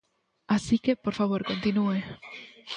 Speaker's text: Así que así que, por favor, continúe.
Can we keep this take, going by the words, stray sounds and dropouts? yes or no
no